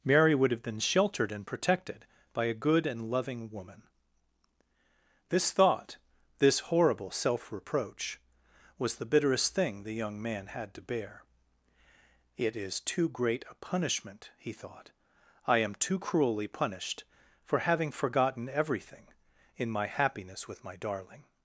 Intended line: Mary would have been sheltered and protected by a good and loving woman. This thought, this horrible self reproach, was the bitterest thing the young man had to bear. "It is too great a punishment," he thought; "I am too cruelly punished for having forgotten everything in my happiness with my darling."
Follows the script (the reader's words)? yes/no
yes